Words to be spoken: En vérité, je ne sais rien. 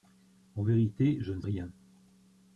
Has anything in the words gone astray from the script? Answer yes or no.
yes